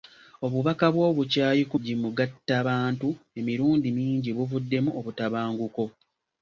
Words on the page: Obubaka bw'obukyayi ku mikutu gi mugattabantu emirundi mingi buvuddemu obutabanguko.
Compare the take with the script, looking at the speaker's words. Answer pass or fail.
fail